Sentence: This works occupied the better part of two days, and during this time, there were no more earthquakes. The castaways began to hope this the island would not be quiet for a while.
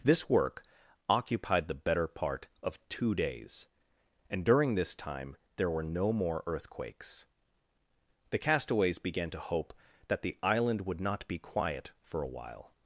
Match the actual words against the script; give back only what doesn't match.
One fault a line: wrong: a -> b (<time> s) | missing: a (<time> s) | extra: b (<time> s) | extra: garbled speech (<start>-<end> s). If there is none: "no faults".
wrong: works -> work (0.3 s)
wrong: this -> that (10.1 s)